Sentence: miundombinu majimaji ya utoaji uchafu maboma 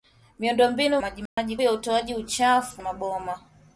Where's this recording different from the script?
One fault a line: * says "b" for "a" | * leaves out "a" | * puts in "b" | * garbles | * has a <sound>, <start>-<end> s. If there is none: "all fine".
* has a dropout, 1.3-1.4 s